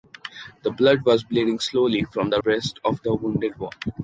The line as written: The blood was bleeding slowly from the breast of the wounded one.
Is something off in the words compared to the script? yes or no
no